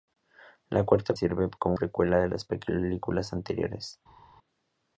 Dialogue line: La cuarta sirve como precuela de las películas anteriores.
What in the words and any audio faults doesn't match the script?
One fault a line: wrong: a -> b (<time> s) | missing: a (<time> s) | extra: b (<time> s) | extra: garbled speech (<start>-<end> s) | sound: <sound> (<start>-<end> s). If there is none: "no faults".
no faults